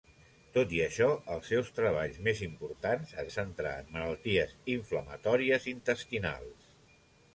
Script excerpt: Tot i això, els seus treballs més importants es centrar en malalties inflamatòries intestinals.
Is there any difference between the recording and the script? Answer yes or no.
no